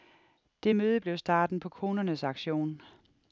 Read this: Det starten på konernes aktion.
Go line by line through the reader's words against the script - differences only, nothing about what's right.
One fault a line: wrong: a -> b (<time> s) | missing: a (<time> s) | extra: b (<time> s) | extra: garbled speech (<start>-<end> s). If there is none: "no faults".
extra: møde blev (0.7 s)